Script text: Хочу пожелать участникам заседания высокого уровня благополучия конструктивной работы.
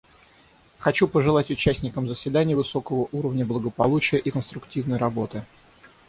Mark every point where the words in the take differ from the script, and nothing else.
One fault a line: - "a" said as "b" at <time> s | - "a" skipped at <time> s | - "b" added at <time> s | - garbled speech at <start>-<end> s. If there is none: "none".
- "и" added at 4.2 s